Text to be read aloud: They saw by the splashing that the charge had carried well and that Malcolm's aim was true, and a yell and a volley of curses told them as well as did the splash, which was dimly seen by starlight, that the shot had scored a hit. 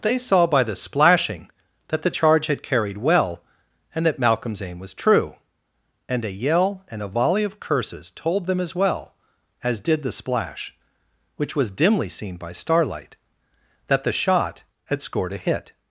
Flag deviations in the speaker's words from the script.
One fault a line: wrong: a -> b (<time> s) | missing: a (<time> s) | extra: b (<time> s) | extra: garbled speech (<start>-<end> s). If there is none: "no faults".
no faults